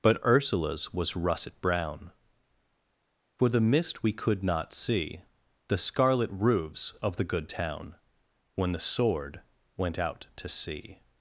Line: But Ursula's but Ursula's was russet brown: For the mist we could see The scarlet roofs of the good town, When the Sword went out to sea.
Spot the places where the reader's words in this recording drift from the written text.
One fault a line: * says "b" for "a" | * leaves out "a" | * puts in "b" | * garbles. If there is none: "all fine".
* leaves out "but Ursula's"
* puts in "not"